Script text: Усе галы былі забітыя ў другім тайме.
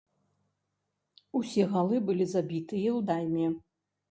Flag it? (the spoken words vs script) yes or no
yes